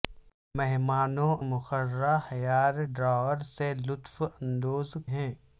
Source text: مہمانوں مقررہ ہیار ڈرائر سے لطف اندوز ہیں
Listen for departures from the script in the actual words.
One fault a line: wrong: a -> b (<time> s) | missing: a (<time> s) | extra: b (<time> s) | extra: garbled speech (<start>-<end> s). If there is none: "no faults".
no faults